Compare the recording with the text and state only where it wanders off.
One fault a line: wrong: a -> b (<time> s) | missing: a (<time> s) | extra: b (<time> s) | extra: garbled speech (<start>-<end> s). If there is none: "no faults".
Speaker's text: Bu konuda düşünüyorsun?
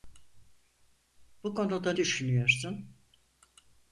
no faults